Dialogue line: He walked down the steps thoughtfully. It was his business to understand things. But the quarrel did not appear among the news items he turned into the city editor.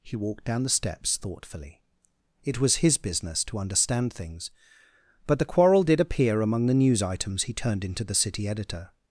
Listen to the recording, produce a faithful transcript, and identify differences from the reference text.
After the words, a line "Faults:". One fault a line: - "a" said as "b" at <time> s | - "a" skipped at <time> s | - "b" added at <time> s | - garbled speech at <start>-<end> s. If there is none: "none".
He walked down the steps thoughtfully. It was his business to understand things. But the quarrel did appear among the news items he turned into the city editor.
Faults:
- "not" skipped at 6.0 s